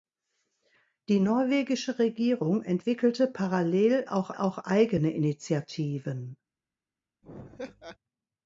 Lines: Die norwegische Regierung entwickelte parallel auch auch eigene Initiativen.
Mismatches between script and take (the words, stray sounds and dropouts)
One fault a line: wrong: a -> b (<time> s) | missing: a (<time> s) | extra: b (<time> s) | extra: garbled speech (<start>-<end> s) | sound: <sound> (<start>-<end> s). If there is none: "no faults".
sound: laugh (7.2-8.0 s)